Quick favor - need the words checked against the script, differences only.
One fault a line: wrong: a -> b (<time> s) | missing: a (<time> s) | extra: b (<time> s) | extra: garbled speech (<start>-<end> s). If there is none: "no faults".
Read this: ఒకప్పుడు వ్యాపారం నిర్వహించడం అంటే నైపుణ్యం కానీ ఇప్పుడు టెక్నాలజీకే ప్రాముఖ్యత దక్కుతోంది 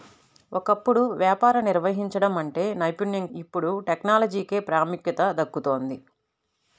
missing: కానీ (3.3 s)